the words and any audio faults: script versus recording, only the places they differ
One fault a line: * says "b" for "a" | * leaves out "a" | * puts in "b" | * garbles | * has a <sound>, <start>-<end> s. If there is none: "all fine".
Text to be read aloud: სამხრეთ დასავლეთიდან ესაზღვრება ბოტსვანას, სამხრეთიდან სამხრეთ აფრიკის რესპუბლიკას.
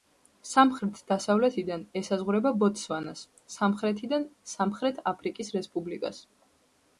all fine